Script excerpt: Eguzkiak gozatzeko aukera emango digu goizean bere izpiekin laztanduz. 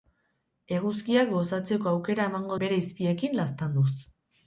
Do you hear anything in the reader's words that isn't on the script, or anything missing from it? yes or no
yes